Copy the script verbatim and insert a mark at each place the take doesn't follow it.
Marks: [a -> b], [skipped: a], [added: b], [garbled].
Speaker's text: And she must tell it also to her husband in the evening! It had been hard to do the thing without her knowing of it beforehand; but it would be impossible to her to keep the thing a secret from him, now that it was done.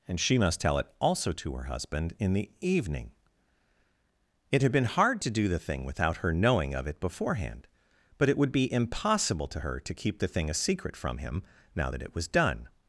And she must tell it also to her husband in the evening! It had been hard to do the thing without her knowing of it beforehand; but it would be impossible to her to keep the thing a secret from him, now that it was done.